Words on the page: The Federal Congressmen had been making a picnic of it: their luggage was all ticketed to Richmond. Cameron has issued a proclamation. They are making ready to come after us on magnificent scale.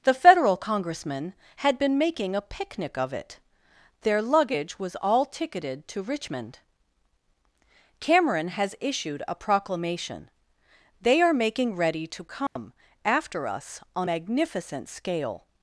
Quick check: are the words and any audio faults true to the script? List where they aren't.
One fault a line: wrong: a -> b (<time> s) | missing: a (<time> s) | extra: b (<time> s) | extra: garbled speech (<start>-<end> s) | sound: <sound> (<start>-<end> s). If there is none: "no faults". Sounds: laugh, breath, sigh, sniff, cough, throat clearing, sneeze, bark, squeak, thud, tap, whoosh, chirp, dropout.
sound: dropout (12.5-12.6 s)